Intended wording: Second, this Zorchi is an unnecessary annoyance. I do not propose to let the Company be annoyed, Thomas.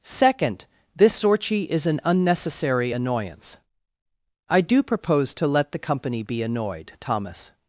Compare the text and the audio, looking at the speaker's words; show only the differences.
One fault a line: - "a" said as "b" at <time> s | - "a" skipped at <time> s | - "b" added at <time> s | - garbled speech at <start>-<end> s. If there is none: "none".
- "not" skipped at 4.8 s